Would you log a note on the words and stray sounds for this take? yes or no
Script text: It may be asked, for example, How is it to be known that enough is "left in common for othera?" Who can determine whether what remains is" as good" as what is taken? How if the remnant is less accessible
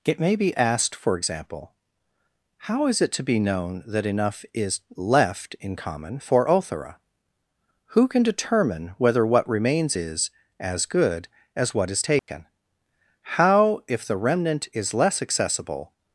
yes